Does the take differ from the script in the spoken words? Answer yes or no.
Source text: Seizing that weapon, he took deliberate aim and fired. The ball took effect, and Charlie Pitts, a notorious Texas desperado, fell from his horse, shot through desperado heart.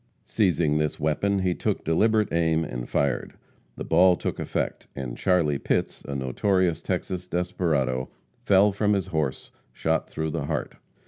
yes